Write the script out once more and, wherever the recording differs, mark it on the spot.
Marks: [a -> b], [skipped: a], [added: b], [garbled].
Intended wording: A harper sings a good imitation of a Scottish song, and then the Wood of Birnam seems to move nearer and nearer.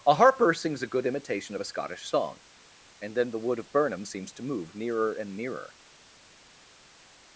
A harper sings a good imitation of a Scottish song, and then the Wood of Birnam seems to move nearer and nearer.